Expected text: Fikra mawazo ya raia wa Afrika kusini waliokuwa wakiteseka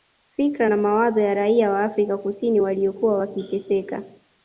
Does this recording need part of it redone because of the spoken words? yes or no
yes